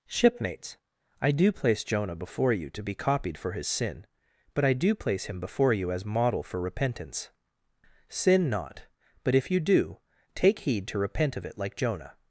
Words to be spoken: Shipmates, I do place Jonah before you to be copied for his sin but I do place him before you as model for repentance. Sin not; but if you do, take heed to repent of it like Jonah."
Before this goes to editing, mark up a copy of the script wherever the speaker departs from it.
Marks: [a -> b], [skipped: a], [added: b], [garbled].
Shipmates, I do place Jonah before you to be copied for his sin but I do place him before you as model for repentance. Sin not; but if you do, take heed to repent of it like Jonah."